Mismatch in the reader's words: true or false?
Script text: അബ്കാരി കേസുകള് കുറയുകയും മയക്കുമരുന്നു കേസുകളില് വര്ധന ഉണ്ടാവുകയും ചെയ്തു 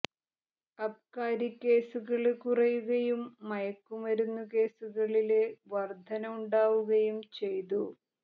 false